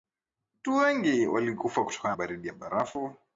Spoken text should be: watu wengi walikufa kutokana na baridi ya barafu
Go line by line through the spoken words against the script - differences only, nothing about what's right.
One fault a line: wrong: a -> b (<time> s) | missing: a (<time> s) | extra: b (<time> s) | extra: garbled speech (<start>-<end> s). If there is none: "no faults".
missing: na (2.1 s)